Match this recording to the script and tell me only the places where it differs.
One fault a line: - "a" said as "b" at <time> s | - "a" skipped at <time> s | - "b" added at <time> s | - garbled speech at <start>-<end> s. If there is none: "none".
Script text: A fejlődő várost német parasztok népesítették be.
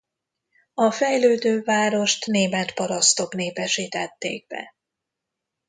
none